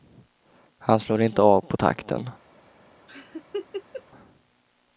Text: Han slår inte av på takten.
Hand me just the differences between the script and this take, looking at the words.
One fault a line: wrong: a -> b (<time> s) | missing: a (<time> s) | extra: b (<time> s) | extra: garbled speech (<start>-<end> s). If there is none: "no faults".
no faults